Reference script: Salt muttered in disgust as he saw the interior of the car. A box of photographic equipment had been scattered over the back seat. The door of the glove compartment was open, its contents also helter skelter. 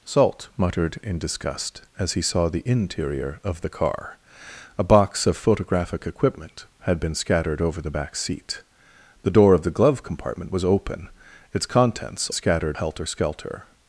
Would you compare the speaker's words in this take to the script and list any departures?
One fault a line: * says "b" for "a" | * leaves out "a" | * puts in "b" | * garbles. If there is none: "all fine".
* says "scattered" for "also"